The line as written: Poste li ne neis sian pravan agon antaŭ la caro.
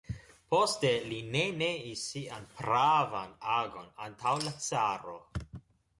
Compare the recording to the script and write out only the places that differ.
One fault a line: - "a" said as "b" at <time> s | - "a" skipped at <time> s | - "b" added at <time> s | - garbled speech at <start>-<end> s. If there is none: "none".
none